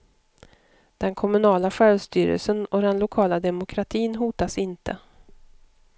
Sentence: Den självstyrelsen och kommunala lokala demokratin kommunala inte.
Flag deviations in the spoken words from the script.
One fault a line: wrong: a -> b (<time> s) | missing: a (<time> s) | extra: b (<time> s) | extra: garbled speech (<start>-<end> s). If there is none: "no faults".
extra: kommunala (1.1 s)
wrong: kommunala -> den (2.8 s)
wrong: kommunala -> hotas (4.2 s)